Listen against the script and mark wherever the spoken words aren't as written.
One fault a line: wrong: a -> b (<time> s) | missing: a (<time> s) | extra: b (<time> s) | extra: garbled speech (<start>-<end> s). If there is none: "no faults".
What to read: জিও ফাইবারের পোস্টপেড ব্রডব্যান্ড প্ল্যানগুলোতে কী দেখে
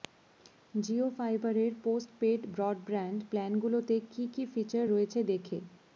extra: কী ফিচার রয়েছে (4.3 s)